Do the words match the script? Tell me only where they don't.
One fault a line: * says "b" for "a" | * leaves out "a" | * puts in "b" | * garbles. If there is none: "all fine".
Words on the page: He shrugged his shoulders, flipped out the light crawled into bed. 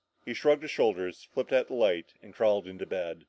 * puts in "and"